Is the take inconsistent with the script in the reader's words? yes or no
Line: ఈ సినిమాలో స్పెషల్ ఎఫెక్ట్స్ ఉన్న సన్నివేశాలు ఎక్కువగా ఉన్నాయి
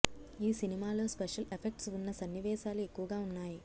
no